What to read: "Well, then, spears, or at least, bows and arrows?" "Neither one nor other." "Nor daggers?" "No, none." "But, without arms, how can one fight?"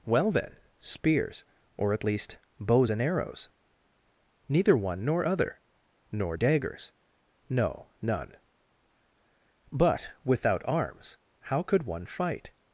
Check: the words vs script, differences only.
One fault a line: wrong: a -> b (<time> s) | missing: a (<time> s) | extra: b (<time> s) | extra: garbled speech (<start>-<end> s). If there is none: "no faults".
wrong: can -> could (11.6 s)